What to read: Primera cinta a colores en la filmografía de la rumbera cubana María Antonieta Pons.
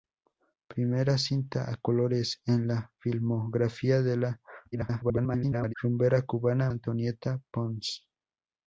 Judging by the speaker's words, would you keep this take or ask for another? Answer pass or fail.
fail